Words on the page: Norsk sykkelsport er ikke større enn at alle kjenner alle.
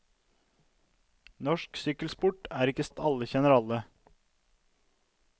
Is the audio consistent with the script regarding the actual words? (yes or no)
no